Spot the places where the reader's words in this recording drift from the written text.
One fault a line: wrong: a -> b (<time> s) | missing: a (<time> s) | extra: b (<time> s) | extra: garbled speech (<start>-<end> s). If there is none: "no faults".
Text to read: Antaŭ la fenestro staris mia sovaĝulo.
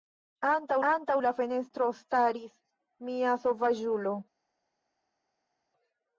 extra: antaŭ (0.9 s)